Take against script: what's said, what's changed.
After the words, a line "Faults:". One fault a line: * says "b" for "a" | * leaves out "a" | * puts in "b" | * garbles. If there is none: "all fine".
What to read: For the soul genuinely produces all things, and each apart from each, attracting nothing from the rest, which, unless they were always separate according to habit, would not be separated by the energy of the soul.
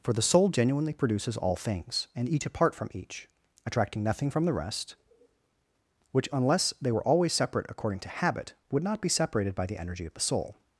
For the soul genuinely produces all things, and each apart from each, attracting nothing from the rest, which, unless they were always separate according to habit, would not be separated by the energy of the soul.
Faults:
all fine